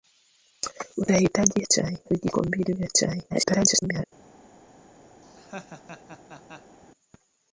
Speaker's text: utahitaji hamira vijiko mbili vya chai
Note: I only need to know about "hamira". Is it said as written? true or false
false